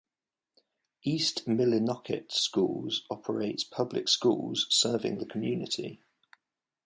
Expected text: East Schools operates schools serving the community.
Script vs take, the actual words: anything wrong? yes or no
yes